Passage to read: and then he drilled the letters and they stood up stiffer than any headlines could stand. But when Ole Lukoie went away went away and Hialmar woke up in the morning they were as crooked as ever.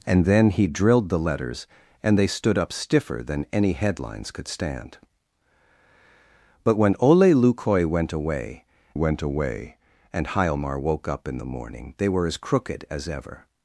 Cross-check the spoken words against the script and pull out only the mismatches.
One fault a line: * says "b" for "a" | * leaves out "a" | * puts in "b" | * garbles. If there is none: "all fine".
all fine